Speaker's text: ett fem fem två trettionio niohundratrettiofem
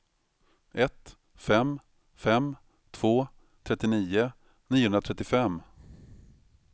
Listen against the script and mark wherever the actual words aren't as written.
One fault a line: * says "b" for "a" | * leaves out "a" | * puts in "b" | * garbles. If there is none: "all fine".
all fine